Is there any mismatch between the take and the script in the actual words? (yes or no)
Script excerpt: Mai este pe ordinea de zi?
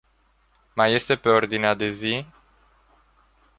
no